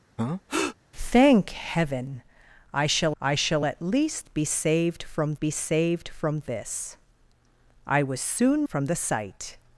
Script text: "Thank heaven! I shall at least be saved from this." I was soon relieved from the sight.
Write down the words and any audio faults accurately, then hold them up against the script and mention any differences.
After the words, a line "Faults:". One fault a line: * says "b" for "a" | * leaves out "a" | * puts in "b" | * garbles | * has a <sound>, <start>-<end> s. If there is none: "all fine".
"Thank heaven! I shall I shall at least be saved from be saved from this." I was soon from the sight.
Faults:
* has a breath, 0.2-0.8 s
* puts in "I shall"
* puts in "be saved from"
* leaves out "relieved"